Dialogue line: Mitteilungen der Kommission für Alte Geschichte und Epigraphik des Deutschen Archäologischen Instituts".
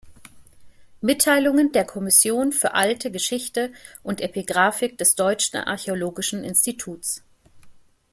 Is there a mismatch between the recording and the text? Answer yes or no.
no